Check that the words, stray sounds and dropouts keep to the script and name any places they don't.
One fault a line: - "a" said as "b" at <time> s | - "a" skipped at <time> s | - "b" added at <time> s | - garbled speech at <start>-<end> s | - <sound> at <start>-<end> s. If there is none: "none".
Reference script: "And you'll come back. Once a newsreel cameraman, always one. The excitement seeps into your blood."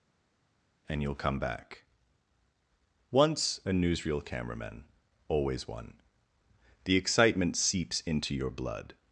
none